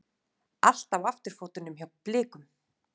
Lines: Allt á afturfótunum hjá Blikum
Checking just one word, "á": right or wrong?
right